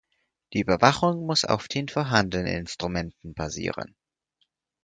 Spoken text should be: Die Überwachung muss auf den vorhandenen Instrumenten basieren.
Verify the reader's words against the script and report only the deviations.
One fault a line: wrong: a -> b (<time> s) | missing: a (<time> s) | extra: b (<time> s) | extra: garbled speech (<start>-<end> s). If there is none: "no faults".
no faults